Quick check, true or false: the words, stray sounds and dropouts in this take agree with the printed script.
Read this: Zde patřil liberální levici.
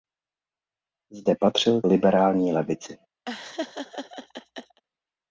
false